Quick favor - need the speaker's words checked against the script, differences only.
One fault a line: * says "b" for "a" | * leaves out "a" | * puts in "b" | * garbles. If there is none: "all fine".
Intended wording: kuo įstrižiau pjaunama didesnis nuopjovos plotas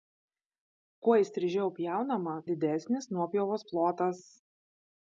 all fine